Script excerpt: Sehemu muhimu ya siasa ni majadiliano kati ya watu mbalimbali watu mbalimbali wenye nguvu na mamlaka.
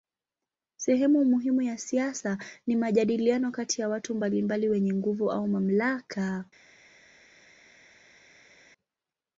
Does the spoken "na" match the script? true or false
false